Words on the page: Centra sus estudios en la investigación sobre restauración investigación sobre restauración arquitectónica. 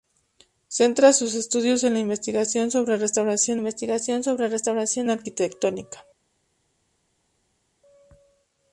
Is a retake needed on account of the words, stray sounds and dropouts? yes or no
no